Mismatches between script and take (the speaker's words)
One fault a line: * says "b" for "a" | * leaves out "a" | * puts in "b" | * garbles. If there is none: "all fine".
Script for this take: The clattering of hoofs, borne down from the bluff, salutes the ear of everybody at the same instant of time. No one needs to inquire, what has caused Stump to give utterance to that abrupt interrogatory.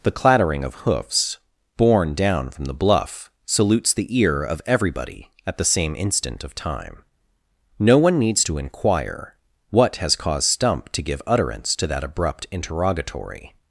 all fine